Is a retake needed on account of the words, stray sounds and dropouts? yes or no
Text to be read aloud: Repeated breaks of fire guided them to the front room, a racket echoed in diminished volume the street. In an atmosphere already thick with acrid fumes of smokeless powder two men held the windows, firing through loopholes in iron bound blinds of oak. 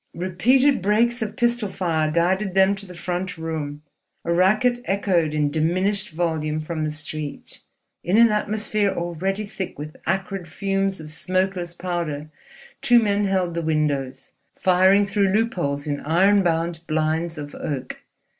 yes